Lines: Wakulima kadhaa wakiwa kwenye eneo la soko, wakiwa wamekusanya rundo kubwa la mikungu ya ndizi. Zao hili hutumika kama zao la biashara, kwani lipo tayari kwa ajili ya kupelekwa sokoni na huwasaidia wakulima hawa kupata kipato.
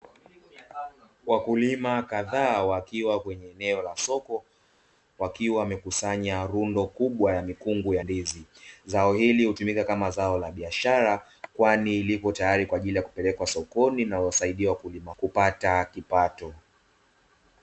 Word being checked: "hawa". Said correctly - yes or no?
no